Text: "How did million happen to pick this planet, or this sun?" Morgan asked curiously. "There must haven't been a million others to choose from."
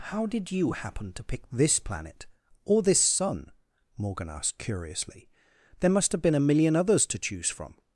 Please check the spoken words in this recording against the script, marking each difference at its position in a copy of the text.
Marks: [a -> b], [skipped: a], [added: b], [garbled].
"How did [million -> you] happen to pick this planet, or this sun?" Morgan asked curiously. "There must [haven't -> have] been a million others to choose from."